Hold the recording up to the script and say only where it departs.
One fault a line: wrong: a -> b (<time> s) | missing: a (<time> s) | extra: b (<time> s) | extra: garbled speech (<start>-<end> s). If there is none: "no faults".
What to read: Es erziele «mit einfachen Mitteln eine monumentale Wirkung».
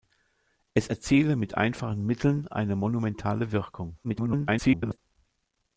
extra: garbled speech (4.0-5.0 s)